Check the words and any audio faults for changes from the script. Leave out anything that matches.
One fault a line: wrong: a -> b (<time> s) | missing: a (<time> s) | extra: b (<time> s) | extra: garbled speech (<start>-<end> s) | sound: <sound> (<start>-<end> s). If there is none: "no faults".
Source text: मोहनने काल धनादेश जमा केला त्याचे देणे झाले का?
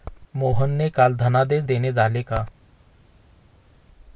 missing: जमा केला त्याचे (1.6 s)